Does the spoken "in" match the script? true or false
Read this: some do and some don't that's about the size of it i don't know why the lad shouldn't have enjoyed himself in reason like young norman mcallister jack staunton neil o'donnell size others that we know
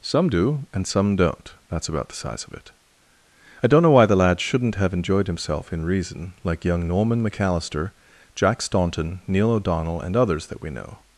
true